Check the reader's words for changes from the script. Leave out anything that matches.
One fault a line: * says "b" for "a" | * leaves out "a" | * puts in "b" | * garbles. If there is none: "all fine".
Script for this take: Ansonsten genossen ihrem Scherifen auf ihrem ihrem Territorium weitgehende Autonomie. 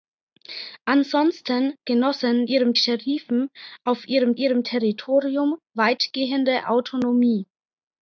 all fine